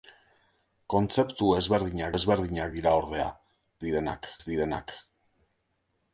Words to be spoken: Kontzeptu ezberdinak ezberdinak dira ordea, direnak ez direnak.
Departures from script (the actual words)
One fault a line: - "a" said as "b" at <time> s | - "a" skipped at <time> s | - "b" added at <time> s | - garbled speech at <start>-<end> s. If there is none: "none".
none